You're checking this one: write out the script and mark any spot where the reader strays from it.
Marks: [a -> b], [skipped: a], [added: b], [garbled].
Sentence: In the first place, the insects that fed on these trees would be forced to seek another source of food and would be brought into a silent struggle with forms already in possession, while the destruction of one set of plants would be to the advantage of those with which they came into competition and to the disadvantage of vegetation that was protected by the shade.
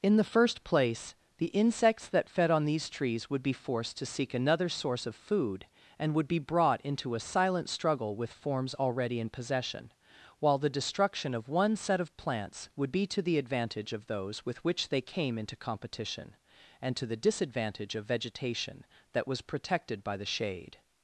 In the first place, the insects that fed on these trees would be forced to seek another source of food and would be brought into a silent struggle with forms already in possession, while the destruction of one set of plants would be to the advantage of those with which they came into competition and to the disadvantage of vegetation that was protected by the shade.